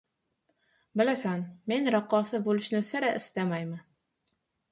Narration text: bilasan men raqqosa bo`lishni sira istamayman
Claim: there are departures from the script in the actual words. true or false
false